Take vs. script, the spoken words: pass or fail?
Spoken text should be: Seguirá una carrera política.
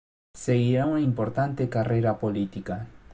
fail